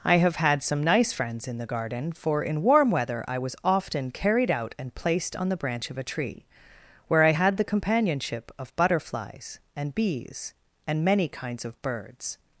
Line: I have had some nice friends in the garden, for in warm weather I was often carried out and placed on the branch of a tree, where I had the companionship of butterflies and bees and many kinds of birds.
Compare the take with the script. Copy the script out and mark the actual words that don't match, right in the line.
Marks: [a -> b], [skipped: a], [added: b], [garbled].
I have had some nice friends in the garden, for in warm weather I was often carried out and placed on the branch of a tree, where I had the companionship of butterflies and bees and many kinds of birds.